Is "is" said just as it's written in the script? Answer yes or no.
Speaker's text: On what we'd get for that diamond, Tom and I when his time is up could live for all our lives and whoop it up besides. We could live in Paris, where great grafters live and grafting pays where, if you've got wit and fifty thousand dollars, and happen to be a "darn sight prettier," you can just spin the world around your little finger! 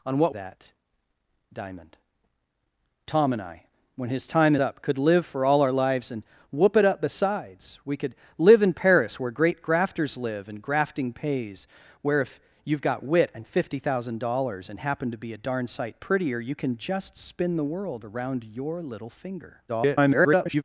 no